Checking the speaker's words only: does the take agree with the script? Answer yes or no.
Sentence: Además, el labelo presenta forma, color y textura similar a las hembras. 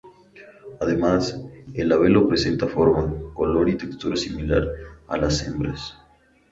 yes